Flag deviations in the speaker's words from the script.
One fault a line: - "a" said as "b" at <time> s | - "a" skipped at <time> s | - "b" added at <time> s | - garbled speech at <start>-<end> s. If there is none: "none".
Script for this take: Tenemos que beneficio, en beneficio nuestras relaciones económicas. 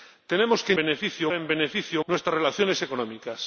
none